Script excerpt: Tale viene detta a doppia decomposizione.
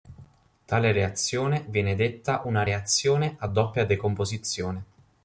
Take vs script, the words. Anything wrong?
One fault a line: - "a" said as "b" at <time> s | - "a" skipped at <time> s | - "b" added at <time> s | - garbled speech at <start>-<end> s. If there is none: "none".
- "reazione" added at 0.9 s
- "una reazione" added at 2.5 s